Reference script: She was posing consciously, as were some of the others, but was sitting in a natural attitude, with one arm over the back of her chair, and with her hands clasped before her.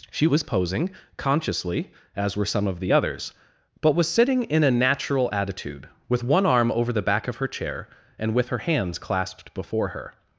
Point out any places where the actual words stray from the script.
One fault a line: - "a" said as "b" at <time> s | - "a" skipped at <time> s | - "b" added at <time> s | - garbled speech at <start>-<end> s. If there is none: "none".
none